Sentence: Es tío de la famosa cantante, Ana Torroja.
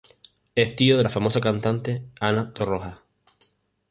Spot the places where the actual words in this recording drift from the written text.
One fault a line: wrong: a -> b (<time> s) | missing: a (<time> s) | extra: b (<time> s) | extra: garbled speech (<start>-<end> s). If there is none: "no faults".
no faults